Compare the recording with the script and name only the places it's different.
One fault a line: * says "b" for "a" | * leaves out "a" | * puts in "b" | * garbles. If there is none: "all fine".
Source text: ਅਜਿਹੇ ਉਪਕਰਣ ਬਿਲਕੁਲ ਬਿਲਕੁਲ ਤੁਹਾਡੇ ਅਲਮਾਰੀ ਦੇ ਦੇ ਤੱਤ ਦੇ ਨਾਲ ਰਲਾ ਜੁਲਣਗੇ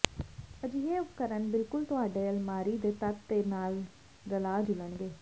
* leaves out "ਬਿਲਕੁਲ"
* leaves out "ਦੇ"